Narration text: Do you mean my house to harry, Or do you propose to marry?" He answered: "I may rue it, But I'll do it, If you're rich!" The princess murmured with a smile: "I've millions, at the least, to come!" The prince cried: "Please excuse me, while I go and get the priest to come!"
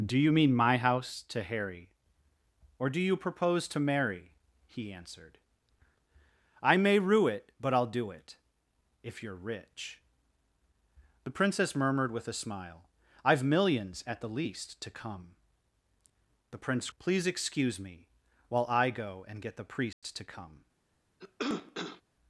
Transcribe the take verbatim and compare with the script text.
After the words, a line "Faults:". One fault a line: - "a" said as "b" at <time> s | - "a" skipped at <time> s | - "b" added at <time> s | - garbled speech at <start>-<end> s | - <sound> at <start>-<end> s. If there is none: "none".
Do you mean my house to harry, Or do you propose to marry?" He answered: "I may rue it, But I'll do it, If you're rich!" The princess murmured with a smile: "I've millions, at the least, to come!" The prince: "Please excuse me, while I go and get the priest to come!"
Faults:
- "cried" skipped at 16.9 s
- dropout at 19.9-20.0 s
- cough at 21.2-22.0 s